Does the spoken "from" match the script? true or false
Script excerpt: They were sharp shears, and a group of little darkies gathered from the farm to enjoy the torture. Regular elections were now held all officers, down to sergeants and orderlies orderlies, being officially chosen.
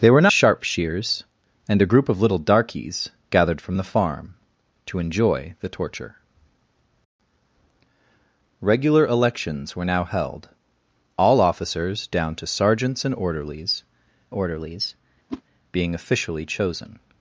true